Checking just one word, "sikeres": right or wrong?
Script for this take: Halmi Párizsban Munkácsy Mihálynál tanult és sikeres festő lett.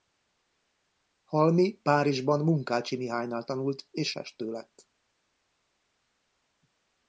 wrong